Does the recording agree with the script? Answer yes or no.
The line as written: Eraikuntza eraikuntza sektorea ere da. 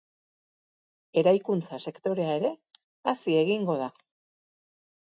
no